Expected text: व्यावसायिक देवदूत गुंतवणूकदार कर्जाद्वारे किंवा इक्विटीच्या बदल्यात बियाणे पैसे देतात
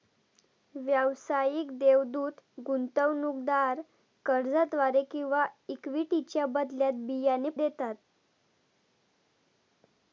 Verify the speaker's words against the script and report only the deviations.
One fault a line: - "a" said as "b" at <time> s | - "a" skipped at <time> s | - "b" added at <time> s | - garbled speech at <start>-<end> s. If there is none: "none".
- "पैसे" skipped at 7.5 s